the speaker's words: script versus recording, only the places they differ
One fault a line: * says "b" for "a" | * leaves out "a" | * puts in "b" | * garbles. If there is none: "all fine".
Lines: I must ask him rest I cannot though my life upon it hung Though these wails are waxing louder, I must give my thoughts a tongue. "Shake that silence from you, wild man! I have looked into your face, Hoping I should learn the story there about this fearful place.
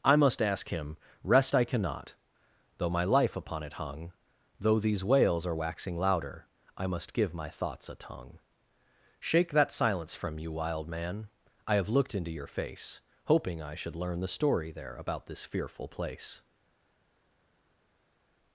all fine